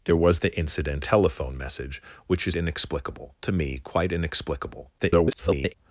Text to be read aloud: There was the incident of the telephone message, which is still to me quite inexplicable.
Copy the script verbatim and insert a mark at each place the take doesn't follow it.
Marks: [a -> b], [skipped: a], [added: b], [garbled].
There was the incident [skipped: of the] telephone message, which is [still -> inexplicable] to me quite inexplicable. [garbled]